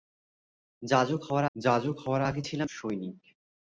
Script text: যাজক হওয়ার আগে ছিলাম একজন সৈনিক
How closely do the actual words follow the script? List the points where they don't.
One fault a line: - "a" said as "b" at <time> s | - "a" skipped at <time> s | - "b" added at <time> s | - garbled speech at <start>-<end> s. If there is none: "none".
- "যাজক হওয়ার" added at 1.6 s
- "একজন" skipped at 2.7 s